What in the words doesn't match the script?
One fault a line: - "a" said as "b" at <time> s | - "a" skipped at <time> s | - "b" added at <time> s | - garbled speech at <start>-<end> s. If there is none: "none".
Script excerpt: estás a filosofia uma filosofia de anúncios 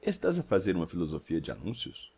- "filosofia" said as "fazer" at 0.4 s